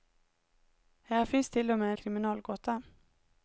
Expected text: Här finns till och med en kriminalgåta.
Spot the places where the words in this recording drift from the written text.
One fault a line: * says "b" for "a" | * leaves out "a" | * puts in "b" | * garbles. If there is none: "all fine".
all fine